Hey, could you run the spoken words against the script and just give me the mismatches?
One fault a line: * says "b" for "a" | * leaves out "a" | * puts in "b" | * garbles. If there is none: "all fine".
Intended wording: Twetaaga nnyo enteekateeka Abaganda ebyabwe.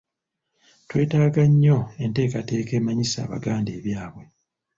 * puts in "emanyisa"